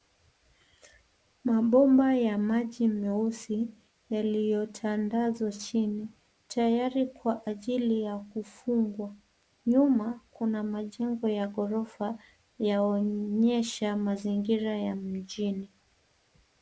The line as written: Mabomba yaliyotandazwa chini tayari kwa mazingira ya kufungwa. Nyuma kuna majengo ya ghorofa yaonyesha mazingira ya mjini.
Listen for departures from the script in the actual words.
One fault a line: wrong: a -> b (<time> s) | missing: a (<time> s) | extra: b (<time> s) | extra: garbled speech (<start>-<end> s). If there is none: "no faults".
extra: ya maji meusi (2.1 s)
wrong: mazingira -> ajili (7.4 s)